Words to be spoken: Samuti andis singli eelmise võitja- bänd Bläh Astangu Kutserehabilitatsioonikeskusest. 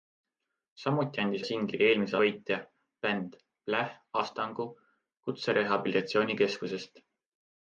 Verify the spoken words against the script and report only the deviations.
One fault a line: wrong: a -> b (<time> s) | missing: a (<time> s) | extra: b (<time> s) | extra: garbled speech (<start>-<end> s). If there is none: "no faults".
no faults